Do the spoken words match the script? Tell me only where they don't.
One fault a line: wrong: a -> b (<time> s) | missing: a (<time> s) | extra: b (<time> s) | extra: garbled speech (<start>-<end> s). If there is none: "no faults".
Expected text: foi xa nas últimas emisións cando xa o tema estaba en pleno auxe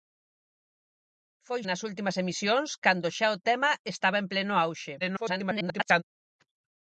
missing: xa (1.6 s)
extra: garbled speech (5.0-6.0 s)